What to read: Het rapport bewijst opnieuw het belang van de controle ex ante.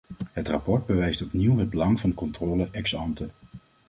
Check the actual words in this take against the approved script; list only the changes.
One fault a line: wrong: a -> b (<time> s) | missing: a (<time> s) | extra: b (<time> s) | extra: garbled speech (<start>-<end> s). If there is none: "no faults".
no faults